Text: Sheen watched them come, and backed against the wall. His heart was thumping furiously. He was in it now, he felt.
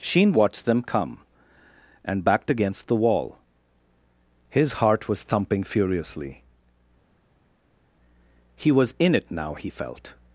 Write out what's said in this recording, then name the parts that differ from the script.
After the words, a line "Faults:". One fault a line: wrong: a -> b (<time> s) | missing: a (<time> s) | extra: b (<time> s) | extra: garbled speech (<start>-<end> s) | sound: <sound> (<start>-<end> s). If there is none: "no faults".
Sheen watched them come, and backed against the wall. His heart was thumping furiously. He was in it now, he felt.
Faults:
no faults